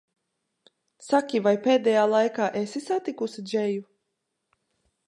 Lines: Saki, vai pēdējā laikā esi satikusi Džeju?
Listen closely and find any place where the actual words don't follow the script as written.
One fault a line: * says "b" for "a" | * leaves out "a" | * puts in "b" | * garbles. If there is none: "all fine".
all fine